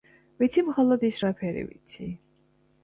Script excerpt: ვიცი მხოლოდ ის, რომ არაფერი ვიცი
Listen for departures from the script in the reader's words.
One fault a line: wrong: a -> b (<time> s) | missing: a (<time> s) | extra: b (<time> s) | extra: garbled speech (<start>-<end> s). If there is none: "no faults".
missing: რომ (1.2 s)